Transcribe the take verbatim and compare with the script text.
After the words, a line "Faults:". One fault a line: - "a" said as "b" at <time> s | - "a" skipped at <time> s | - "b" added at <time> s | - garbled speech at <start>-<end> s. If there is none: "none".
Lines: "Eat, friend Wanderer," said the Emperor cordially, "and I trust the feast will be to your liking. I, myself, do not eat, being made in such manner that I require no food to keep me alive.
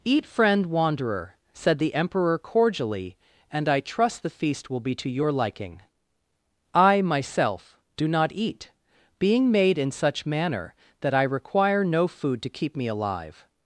"Eat, friend Wanderer," said the Emperor cordially, "and I trust the feast will be to your liking. I, myself, do not eat, being made in such manner that I require no food to keep me alive.
Faults:
none